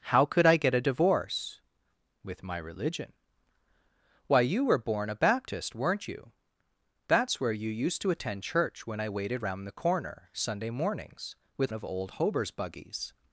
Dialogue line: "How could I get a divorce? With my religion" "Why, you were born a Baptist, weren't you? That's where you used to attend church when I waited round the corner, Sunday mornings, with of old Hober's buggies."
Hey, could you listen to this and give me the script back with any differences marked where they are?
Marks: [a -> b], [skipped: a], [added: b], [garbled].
"How could I get a divorce? With my religion" "Why, you were born a Baptist, weren't you? That's where you used to attend church when I waited round the corner, Sunday mornings, with of old Hober's buggies."